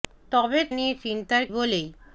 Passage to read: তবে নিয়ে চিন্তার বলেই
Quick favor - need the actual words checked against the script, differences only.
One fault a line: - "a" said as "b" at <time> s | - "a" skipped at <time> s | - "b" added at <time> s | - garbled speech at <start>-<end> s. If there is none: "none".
none